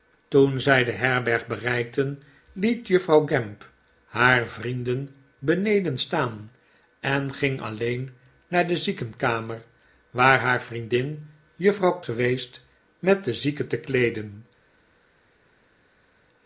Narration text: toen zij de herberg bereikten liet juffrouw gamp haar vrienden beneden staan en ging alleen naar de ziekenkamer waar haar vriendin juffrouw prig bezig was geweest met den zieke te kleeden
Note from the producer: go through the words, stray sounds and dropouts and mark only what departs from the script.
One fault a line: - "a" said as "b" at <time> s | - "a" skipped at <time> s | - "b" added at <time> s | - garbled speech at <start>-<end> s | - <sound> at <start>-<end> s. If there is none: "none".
- "prig bezig was" skipped at 12.0 s